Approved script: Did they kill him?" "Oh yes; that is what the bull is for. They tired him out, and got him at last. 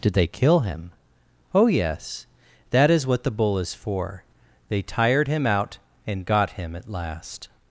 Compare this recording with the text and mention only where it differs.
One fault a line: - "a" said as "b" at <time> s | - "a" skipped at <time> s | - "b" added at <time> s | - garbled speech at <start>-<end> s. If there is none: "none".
none